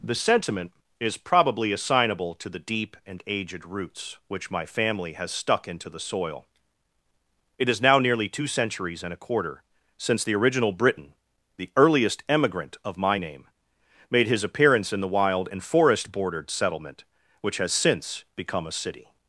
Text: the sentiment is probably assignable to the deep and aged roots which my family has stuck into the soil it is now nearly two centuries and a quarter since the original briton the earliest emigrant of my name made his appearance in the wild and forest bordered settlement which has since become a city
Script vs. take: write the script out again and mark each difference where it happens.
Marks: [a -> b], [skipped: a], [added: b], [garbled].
the sentiment is probably assignable to the deep and aged roots which my family has stuck into the soil it is now nearly two centuries and a quarter since the original briton the earliest emigrant of my name made his appearance in the wild and forest bordered settlement which has since become a city